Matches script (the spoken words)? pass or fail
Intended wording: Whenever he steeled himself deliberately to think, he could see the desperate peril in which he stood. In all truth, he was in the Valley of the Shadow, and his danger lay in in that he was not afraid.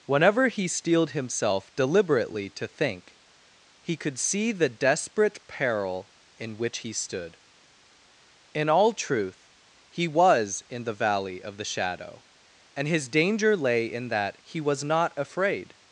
fail